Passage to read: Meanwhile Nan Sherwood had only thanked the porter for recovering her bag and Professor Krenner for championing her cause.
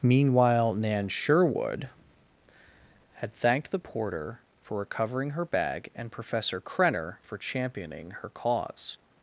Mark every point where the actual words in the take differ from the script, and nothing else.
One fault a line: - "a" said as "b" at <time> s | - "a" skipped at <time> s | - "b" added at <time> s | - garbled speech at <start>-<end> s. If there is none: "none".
- "only" skipped at 3.3 s